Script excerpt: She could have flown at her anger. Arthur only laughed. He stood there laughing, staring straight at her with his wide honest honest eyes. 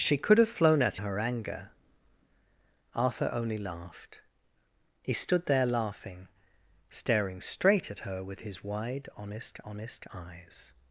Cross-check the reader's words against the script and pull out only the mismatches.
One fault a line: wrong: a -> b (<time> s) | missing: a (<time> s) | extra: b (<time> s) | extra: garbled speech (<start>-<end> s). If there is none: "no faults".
no faults